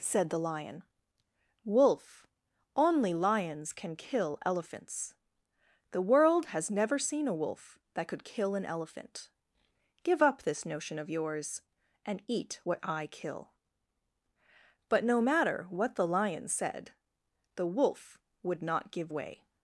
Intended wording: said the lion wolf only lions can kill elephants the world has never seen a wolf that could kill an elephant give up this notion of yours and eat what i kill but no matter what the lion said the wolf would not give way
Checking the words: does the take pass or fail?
pass